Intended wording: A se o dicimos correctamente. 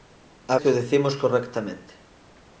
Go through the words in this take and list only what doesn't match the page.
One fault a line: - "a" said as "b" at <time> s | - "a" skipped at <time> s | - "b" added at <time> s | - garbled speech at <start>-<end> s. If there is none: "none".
none